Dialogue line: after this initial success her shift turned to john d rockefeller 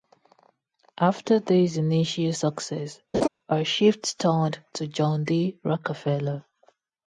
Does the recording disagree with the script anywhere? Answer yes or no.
no